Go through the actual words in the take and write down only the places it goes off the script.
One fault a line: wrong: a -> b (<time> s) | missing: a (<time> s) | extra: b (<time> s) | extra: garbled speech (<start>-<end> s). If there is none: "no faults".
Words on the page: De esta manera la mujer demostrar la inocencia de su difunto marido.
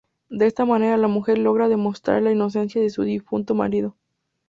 extra: logra (1.4 s)